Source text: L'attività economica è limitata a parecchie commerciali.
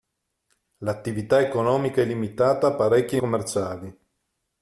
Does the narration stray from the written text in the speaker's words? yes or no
no